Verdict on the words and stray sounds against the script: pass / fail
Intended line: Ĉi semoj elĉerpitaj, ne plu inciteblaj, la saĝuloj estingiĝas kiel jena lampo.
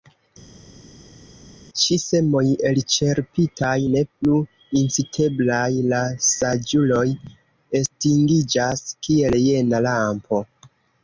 pass